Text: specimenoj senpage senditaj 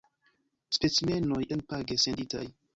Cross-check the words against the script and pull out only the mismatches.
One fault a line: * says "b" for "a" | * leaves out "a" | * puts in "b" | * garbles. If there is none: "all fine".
all fine